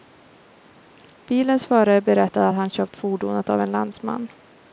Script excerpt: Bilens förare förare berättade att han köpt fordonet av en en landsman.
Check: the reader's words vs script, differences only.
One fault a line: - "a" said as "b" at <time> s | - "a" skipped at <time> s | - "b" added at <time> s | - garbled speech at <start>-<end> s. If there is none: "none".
- "förare" skipped at 2.0 s
- "en" skipped at 3.7 s